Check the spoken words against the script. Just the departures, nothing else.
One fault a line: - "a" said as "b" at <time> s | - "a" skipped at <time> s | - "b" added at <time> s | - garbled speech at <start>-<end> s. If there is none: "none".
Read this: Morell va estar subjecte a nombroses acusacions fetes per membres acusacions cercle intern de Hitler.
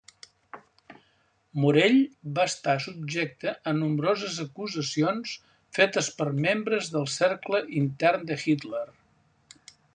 - "acusacions" said as "del" at 7.0 s